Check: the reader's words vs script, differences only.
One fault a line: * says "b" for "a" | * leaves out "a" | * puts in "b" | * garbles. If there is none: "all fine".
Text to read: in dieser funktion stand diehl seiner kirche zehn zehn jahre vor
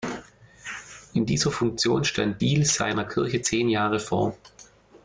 * leaves out "zehn"